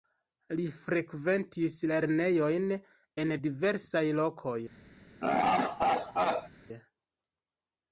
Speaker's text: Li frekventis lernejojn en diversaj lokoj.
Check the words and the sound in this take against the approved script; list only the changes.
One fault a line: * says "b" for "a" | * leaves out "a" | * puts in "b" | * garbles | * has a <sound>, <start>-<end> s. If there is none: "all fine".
* has a laugh, 5.2-6.5 s